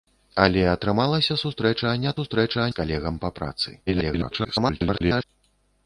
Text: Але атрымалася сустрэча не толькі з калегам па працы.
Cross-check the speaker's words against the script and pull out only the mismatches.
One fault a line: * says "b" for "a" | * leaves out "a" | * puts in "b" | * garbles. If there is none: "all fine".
* says "сустрэча" for "толькі"
* garbles